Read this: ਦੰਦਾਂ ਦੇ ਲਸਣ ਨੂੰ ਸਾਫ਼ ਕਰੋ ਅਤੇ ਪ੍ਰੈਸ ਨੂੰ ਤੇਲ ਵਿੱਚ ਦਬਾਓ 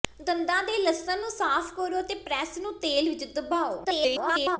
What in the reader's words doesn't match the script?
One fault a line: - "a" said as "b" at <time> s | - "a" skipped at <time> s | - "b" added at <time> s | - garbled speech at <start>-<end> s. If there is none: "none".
- garbled speech at 3.8-4.6 s